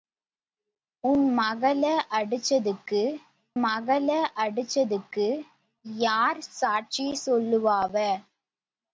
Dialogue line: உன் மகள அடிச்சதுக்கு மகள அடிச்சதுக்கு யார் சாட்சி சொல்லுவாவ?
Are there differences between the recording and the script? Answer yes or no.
no